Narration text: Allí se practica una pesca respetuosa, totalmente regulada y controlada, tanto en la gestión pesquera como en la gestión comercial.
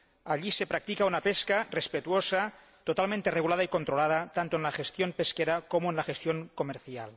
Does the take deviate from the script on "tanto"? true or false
false